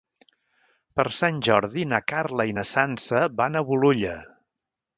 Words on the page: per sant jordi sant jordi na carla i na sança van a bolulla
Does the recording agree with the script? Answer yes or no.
no